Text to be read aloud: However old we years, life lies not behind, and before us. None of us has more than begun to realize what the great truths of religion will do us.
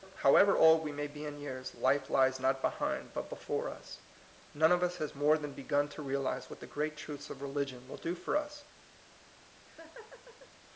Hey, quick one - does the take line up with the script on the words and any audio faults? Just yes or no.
no